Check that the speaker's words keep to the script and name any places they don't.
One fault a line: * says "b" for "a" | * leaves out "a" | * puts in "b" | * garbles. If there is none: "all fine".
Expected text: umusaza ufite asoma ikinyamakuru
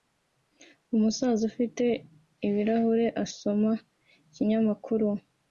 * puts in "ibirahure"